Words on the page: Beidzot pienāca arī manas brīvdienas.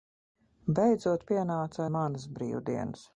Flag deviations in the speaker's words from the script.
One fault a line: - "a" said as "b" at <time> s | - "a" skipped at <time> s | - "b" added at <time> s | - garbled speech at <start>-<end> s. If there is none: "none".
- "arī" skipped at 1.8 s